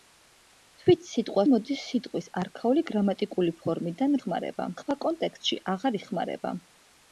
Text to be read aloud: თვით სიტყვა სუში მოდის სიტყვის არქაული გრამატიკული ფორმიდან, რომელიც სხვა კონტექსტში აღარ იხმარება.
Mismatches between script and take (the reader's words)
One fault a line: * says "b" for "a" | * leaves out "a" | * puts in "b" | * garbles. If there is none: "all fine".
* leaves out "სუში"
* says "იხმარება" for "რომელიც"